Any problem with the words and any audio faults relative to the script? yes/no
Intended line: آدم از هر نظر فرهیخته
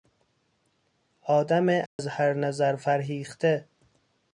yes